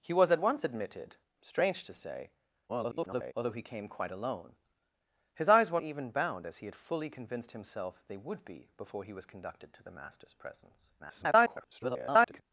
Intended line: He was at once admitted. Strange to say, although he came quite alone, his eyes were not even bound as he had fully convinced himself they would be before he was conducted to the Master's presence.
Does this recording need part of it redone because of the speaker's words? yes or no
yes